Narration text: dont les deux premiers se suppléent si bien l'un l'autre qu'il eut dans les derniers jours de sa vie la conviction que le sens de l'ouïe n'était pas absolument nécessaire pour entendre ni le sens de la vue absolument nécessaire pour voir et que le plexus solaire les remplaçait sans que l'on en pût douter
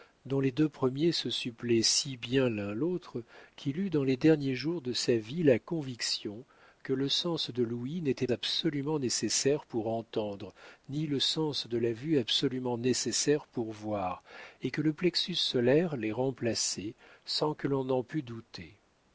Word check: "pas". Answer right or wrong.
wrong